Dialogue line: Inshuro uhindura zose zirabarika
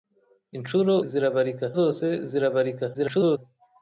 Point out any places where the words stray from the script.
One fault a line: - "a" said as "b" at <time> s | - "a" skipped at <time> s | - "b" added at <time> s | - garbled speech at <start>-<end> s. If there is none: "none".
- "uhindura" said as "zirabarika" at 1.1 s
- garbled speech at 2.9-3.4 s